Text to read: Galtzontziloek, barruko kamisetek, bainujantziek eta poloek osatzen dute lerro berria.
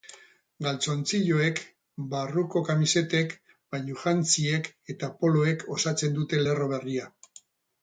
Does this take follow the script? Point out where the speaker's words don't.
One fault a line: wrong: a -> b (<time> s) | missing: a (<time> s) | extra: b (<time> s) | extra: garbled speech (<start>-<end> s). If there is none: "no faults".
no faults